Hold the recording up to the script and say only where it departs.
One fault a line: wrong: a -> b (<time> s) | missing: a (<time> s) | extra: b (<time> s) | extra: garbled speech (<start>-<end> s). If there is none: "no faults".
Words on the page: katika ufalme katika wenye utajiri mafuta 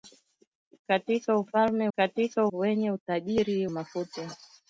no faults